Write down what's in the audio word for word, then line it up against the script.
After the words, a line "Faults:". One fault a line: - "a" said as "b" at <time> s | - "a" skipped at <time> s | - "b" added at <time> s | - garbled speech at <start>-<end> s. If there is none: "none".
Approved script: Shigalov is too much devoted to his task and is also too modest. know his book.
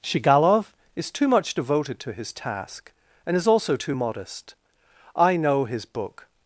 Shigalov is too much devoted to his task and is also too modest. I know his book.
Faults:
- "I" added at 5.1 s